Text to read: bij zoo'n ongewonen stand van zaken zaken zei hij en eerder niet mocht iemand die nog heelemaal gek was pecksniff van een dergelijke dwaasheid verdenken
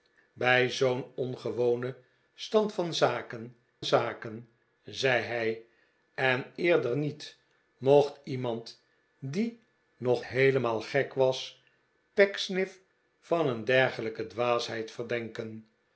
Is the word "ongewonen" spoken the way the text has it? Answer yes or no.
yes